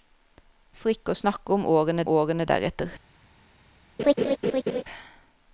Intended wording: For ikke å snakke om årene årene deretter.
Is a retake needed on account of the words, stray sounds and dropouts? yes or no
yes